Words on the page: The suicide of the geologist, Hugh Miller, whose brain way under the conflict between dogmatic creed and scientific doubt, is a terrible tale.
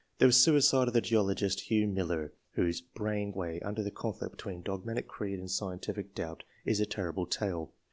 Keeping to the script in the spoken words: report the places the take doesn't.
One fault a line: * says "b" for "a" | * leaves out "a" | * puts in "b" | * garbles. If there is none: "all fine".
all fine